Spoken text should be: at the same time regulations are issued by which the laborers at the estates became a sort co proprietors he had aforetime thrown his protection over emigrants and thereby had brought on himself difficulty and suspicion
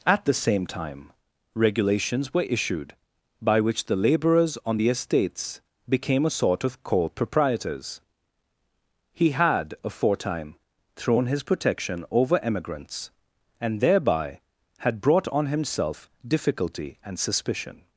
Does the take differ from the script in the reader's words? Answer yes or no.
yes